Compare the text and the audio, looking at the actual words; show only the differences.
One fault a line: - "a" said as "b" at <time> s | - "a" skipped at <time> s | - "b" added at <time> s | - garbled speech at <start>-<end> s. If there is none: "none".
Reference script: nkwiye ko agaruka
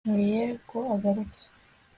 none